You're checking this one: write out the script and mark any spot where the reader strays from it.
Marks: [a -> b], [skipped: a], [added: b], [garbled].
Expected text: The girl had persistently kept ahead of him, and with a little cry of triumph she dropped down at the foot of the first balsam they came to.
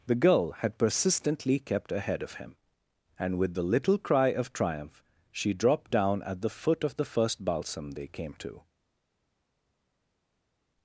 The girl had persistently kept ahead of him, and with [a -> the] little cry of triumph she dropped down at the foot of the first balsam they came to.